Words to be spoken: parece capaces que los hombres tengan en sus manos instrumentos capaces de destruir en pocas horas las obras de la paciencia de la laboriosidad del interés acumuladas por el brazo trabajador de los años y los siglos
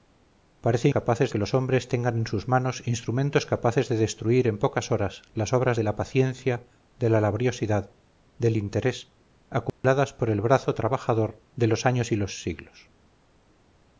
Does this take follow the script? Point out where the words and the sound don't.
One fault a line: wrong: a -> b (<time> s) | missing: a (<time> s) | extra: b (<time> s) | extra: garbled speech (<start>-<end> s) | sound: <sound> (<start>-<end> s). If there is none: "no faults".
sound: dropout (9.7-9.8 s)